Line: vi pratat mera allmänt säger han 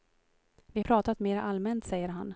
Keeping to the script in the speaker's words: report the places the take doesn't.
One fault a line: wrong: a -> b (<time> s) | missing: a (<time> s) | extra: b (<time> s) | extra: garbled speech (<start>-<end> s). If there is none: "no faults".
no faults